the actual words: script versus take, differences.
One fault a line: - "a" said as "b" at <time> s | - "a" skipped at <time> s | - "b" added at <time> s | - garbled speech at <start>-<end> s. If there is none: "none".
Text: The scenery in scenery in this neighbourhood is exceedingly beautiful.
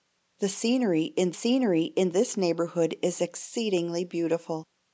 none